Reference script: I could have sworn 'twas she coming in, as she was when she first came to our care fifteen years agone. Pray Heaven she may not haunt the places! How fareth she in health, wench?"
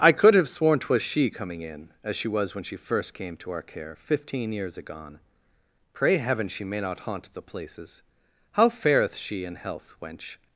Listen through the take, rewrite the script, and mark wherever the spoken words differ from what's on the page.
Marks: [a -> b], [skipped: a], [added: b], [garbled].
I could have sworn 'twas she coming in, as she was when she first came to our care fifteen years agone. Pray Heaven she may not haunt the places! How fareth she in health, wench?"